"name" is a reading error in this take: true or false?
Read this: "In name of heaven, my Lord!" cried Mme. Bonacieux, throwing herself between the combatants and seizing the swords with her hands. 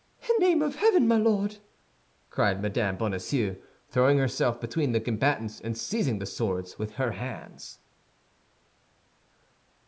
false